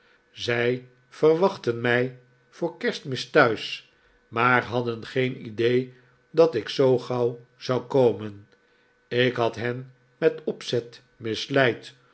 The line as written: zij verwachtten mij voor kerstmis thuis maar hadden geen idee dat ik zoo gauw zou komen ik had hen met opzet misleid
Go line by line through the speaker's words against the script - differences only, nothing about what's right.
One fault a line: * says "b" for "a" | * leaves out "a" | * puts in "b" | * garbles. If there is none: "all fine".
all fine